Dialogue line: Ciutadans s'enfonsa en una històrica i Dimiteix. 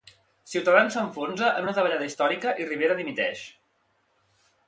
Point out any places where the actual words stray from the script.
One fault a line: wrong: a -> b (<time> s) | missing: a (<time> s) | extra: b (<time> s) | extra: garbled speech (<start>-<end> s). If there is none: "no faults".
extra: davallada (1.8 s)
extra: Rivera (2.7 s)